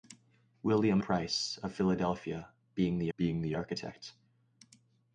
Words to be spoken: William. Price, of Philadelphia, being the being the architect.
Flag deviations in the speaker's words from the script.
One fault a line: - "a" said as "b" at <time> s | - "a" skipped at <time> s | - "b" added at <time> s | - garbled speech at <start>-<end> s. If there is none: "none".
none